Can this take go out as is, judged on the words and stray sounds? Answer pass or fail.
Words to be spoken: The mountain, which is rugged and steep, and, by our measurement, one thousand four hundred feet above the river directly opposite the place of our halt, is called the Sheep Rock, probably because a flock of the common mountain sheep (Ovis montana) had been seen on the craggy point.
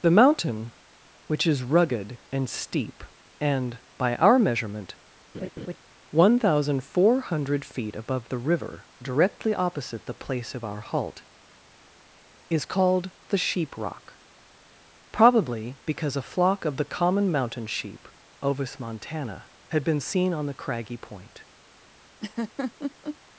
fail